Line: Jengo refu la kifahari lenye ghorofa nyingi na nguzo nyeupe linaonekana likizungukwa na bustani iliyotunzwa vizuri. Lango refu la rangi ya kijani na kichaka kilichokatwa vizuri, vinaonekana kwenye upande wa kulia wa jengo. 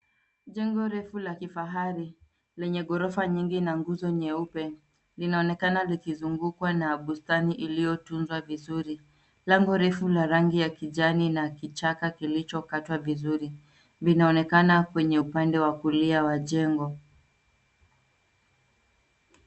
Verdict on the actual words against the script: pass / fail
pass